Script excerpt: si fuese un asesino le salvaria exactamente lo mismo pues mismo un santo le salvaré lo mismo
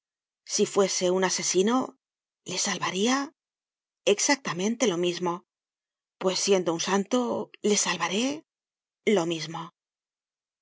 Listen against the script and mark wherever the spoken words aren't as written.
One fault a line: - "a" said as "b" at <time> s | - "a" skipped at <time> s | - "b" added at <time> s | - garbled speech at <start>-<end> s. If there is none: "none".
- "mismo" said as "siendo" at 6.4 s